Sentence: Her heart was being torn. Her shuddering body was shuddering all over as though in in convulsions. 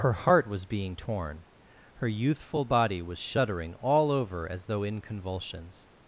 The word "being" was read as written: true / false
true